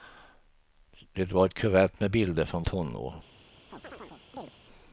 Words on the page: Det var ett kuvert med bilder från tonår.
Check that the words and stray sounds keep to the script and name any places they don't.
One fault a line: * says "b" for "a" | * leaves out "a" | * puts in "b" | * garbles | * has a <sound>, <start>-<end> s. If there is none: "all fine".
* has a chirp, 3.7-4.5 s